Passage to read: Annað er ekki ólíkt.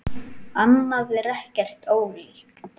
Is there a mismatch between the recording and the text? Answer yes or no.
no